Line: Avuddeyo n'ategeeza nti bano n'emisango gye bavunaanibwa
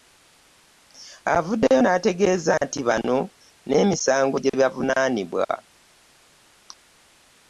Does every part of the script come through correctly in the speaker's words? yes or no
yes